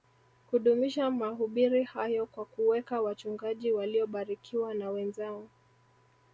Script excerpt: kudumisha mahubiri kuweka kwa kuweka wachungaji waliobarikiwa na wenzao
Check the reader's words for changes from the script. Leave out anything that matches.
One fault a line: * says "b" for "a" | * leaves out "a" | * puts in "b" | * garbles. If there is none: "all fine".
* says "hayo" for "kuweka"